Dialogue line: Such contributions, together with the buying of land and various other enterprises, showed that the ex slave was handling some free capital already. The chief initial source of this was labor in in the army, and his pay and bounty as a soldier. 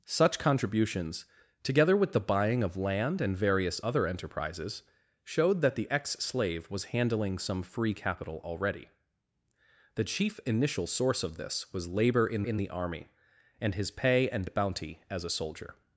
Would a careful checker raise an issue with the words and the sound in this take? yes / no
no